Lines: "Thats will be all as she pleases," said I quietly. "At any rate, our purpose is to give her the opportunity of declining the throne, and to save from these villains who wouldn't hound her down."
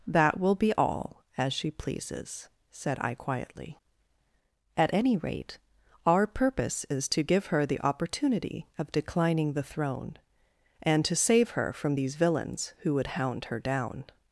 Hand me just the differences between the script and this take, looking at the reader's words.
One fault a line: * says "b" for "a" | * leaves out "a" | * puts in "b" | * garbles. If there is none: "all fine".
* says "That" for "Thats"
* puts in "her"
* says "would" for "wouldn't"